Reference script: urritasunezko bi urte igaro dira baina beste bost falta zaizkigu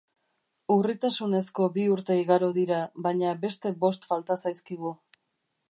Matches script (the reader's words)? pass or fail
pass